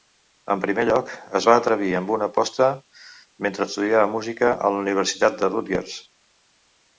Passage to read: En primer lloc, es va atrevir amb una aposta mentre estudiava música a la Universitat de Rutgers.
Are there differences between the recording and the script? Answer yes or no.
no